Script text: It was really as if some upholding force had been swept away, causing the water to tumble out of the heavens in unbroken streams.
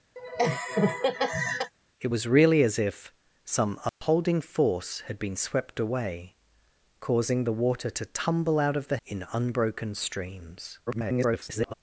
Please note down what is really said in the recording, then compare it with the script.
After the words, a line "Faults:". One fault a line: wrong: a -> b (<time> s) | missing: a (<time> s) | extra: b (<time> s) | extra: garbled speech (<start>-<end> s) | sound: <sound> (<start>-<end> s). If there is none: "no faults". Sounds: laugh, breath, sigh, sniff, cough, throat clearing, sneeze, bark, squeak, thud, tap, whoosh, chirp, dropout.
It was really as if some upholding force had been swept away, causing the water to tumble out of the in unbroken streams. [garbled]
Faults:
sound: laugh (0.2-1.7 s)
sound: dropout (3.9-4.0 s)
missing: heavens (9.0 s)
extra: garbled speech (10.9-11.7 s)